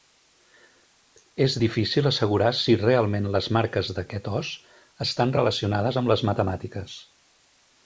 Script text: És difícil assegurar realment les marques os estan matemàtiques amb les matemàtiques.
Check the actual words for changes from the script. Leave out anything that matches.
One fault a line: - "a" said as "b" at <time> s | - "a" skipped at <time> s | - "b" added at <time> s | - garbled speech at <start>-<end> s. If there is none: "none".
- "si" added at 2.6 s
- "d'aquest" added at 4.0 s
- "matemàtiques" said as "relacionades" at 5.4 s